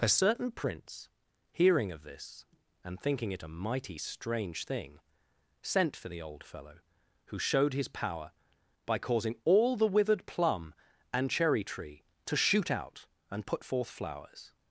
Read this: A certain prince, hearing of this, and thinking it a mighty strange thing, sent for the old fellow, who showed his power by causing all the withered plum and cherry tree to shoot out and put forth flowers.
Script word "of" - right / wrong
right